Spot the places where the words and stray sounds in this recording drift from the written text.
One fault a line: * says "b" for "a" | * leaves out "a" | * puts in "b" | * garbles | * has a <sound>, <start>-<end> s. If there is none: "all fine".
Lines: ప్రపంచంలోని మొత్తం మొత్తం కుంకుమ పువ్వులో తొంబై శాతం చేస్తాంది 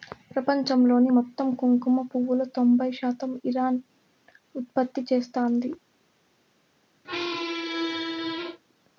* leaves out "మొత్తం"
* puts in "ఇరాన్ ఉత్పత్తి"
* has a squeak, 7.0-8.6 s